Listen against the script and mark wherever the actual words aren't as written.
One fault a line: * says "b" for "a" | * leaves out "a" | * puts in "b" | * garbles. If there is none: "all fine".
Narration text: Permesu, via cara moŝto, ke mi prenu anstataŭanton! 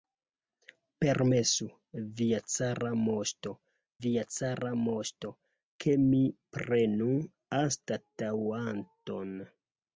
* puts in "via cara moŝto"